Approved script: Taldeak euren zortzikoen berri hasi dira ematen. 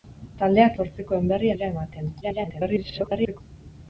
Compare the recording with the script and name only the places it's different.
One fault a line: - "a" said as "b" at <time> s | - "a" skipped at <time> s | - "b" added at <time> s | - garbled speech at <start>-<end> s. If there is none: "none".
- "euren" skipped at 0.8 s
- "hasi" skipped at 1.5 s
- garbled speech at 2.2-3.4 s